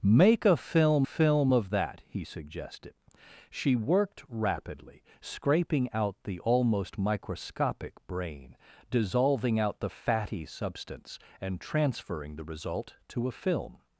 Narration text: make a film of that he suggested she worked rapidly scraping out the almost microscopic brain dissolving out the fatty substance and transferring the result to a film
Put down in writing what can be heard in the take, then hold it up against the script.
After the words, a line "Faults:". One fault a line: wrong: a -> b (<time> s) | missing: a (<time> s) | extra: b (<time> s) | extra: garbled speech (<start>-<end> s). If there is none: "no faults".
make a film film of that he suggested she worked rapidly scraping out the almost microscopic brain dissolving out the fatty substance and transferring the result to a film
Faults:
extra: film (1.0 s)